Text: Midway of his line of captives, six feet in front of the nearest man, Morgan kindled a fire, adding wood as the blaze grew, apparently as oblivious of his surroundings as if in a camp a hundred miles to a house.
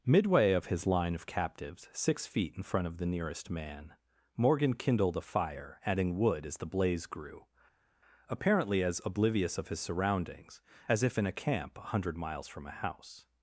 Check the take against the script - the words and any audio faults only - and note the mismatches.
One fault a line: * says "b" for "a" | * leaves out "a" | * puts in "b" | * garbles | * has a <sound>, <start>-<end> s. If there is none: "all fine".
* says "from" for "to"